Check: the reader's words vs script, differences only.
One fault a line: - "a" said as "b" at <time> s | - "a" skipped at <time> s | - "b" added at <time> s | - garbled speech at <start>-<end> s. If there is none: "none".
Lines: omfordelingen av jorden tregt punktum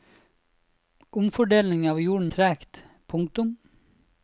none